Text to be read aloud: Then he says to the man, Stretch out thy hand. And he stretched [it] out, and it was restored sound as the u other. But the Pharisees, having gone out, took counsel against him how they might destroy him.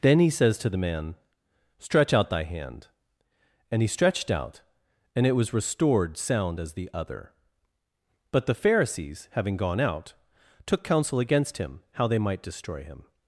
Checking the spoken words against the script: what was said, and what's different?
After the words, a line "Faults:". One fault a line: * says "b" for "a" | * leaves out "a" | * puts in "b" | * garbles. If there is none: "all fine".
Then he says to the man, Stretch out thy hand. And he stretched] out, and it was restored sound as the other. But the Pharisees, having gone out, took counsel against him how they might destroy him.
Faults:
* leaves out "it"
* leaves out "u"